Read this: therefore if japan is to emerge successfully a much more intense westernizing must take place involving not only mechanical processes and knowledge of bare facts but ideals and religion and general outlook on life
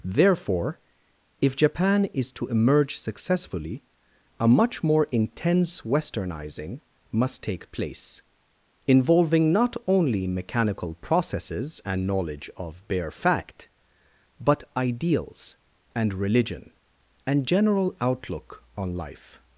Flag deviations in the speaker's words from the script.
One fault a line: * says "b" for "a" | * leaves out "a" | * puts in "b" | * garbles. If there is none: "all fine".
* says "fact" for "facts"